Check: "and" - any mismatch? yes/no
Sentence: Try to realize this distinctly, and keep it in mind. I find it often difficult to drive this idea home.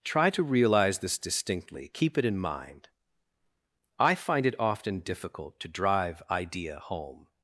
yes